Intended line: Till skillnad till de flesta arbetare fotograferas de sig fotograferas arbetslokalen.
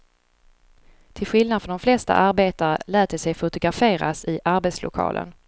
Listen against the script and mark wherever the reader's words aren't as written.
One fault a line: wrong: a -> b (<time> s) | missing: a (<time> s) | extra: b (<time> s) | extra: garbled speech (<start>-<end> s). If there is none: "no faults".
wrong: till -> från (1.6 s)
wrong: fotograferas -> lät (2.9 s)
extra: i (4.2 s)